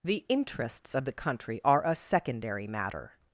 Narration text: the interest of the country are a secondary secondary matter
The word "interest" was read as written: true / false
false